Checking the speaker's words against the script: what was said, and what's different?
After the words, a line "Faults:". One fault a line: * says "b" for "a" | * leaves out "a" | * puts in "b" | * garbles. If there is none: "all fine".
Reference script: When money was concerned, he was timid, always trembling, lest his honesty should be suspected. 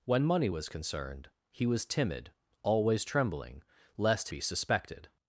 When money was concerned, he was timid, always trembling, lest be suspected.
Faults:
* leaves out "his honesty should"